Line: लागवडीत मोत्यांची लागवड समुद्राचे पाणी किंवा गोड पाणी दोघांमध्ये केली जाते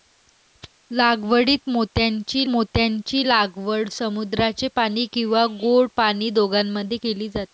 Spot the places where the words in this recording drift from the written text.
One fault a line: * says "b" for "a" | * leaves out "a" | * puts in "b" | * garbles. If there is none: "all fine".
* puts in "मोत्यांची"